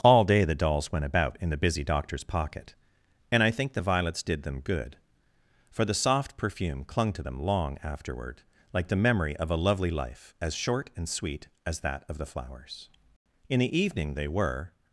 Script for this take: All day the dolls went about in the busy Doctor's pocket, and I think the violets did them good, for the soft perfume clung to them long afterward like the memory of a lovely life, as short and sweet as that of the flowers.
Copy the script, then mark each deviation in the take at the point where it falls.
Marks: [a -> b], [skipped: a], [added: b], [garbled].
All day the dolls went about in the busy Doctor's pocket, and I think the violets did them good, for the soft perfume clung to them long afterward like the memory of a lovely life, as short and sweet as that of the flowers. [added: In the evening they were]